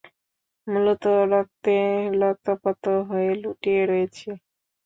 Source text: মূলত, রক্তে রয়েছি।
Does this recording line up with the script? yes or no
no